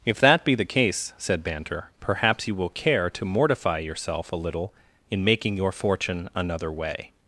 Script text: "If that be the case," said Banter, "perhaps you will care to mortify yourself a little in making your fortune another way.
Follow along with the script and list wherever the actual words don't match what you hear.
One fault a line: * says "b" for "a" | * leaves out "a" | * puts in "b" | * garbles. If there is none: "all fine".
all fine